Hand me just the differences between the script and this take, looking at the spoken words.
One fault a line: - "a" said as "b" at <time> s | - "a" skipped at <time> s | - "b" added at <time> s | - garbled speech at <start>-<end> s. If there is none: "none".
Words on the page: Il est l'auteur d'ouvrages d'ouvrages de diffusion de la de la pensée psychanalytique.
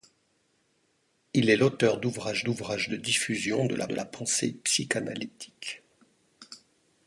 none